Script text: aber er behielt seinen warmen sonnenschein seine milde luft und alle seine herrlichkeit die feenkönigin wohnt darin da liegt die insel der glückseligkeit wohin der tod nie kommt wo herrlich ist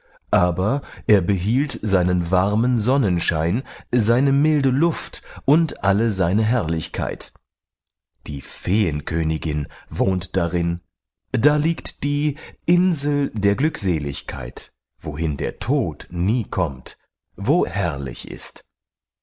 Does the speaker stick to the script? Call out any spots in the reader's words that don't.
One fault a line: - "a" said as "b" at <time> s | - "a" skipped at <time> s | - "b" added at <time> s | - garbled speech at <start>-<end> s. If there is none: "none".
none